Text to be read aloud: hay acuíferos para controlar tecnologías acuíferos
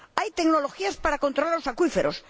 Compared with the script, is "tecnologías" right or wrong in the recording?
wrong